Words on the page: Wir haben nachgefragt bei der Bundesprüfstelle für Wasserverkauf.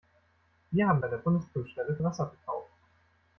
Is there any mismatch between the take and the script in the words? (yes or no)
yes